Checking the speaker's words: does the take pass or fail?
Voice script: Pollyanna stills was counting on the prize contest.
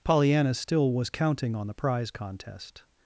fail